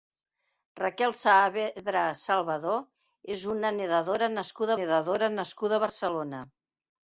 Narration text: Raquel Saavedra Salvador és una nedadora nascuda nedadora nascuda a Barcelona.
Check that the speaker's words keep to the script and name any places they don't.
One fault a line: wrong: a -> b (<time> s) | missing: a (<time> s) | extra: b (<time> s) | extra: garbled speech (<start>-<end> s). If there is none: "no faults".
no faults